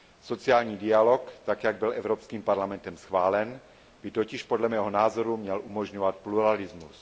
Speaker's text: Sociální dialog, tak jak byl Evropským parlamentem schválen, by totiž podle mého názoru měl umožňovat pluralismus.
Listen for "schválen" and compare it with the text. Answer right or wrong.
right